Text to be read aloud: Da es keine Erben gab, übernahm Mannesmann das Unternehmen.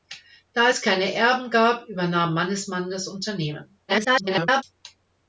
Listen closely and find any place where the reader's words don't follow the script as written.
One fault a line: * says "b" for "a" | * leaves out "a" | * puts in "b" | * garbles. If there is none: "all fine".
* garbles